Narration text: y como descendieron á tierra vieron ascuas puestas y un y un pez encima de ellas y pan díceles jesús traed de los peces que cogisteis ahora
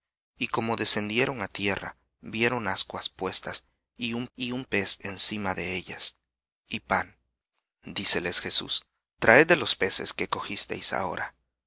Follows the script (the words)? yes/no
yes